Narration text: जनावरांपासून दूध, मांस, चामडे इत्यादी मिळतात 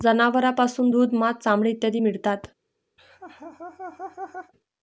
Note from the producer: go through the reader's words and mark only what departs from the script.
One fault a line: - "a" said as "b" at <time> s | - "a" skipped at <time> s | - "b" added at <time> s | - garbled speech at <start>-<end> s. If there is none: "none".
none